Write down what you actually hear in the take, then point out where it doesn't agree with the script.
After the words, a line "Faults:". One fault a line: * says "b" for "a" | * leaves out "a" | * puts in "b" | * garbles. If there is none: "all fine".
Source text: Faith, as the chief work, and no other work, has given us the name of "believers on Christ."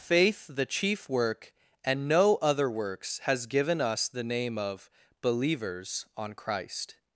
Faith, the chief work, and no other works, has given us the name of "believers on Christ."
Faults:
* leaves out "as"
* says "works" for "work"